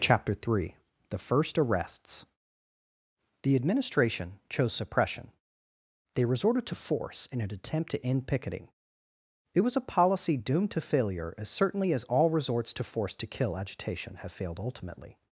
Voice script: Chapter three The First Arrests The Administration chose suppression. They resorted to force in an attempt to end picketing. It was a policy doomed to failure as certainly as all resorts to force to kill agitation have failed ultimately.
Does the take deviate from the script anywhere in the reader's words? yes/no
no